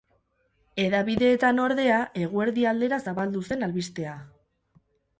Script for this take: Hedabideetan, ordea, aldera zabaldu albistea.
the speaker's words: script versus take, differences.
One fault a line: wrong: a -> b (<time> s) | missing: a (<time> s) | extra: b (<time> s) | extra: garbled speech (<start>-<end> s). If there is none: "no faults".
extra: eguerdi (2.2 s)
extra: zen (3.5 s)